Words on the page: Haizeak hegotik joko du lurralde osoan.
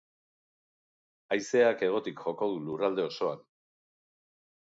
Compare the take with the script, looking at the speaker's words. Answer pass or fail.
pass